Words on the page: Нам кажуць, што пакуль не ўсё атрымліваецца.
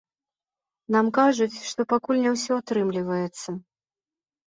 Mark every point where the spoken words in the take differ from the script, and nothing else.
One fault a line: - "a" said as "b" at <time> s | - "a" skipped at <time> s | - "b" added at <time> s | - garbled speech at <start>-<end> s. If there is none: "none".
none